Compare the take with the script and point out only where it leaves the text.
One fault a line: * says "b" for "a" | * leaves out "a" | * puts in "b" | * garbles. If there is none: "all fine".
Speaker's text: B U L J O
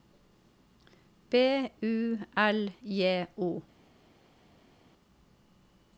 all fine